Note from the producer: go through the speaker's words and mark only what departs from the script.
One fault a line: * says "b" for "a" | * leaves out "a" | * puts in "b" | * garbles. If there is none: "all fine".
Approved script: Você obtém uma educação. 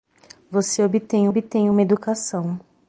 * puts in "obtém"